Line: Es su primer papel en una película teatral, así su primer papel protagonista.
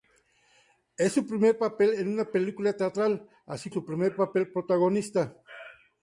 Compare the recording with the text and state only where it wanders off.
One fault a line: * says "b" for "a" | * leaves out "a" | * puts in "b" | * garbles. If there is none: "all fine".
all fine